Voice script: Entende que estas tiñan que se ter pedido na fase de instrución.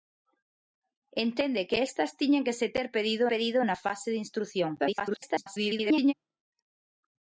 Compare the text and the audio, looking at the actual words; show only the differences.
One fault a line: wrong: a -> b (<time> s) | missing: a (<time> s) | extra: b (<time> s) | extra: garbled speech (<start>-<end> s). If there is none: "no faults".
extra: pedido (3.3 s)
extra: garbled speech (4.8-6.1 s)